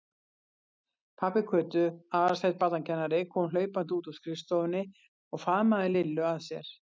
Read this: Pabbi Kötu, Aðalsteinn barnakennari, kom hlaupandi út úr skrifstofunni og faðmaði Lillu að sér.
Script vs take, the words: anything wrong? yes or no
no